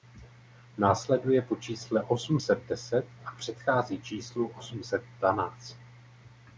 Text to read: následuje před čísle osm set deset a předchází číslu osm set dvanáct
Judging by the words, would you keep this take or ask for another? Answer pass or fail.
fail